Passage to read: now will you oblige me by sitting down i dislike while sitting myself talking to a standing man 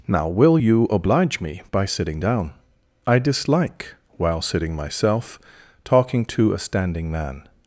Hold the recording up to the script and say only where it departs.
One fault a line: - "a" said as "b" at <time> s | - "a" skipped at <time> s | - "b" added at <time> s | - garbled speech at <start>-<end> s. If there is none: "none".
none